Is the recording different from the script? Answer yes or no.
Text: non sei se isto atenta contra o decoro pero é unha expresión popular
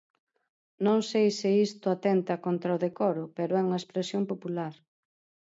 no